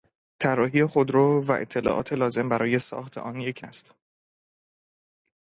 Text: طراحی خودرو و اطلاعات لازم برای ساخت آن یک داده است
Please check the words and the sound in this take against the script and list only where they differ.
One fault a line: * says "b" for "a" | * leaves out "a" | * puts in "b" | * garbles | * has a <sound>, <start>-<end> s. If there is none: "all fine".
* leaves out "داده"